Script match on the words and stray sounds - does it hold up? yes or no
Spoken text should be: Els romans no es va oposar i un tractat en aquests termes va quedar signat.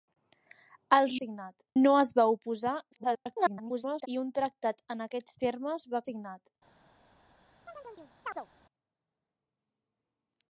no